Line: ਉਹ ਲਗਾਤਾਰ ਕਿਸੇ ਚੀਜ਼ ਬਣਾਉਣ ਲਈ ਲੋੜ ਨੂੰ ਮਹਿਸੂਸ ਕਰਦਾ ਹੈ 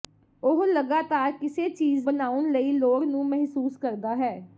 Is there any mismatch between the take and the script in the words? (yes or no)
no